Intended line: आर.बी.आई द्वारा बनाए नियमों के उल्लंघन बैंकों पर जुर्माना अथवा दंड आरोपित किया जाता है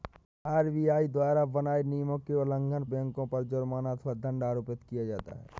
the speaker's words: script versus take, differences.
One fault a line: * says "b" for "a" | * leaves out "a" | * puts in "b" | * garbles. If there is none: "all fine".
all fine